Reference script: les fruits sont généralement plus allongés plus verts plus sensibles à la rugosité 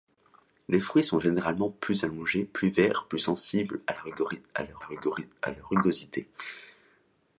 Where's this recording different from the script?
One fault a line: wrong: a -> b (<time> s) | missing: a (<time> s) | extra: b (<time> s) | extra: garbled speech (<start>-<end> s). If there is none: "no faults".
extra: la (4.8 s)